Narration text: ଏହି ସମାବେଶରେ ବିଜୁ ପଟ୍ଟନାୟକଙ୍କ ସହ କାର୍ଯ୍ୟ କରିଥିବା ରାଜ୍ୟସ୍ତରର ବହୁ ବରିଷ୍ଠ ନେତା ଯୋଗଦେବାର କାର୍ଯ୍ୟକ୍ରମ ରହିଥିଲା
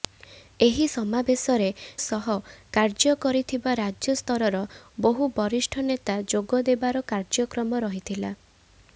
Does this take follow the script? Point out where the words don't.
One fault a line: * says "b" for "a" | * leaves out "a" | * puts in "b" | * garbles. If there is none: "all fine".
* leaves out "ବିଜୁ ପଟ୍ଟନାୟକଙ୍କ"